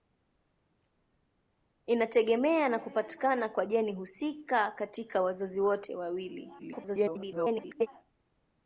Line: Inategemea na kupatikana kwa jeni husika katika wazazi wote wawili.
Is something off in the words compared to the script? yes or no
yes